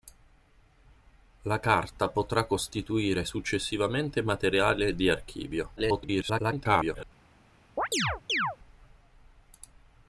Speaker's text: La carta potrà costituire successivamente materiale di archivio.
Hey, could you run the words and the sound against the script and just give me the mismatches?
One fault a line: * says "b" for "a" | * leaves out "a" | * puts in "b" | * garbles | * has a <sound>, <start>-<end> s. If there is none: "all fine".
* garbles
* has a chirp, 7.8-8.6 s